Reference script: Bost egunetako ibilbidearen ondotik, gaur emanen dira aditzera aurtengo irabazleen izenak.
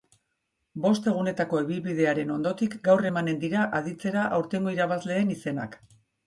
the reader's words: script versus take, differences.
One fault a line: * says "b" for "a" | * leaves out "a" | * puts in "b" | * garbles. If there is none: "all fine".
all fine